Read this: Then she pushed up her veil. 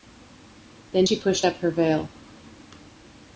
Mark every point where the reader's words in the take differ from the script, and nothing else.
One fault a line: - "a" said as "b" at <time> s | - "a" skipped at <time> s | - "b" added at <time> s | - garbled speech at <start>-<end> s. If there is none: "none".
none